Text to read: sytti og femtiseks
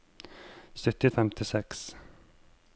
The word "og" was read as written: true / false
true